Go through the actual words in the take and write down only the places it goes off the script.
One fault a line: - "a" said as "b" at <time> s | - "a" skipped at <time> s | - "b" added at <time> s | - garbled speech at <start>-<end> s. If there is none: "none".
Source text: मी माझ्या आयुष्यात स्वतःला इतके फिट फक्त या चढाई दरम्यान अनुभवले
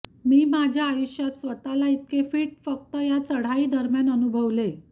none